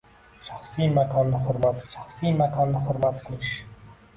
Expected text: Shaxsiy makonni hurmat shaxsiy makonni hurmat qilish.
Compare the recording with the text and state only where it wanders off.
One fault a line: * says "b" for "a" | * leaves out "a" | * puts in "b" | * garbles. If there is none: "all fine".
all fine